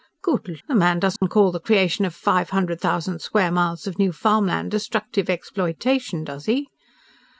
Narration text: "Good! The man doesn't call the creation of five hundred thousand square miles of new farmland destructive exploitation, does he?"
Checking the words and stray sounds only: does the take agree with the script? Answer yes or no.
no